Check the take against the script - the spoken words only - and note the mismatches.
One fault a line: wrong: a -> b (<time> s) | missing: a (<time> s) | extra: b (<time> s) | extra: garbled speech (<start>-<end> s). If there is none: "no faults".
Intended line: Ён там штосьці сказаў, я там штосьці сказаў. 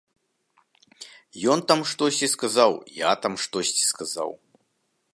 no faults